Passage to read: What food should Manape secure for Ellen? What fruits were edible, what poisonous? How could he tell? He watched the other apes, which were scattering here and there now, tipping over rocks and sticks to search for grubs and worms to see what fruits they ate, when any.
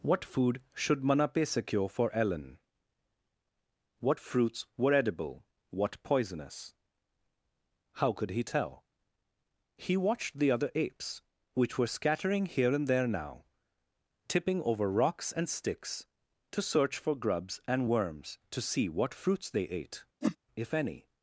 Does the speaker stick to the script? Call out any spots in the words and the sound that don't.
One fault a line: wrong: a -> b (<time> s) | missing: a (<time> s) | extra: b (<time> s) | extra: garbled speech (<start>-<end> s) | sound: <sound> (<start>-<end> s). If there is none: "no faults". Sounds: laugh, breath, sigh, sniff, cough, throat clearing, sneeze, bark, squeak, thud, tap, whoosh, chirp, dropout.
sound: whoosh (20.2-20.4 s)
wrong: when -> if (20.6 s)